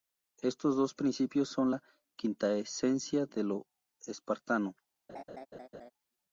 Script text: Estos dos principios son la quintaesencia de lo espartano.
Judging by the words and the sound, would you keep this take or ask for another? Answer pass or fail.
fail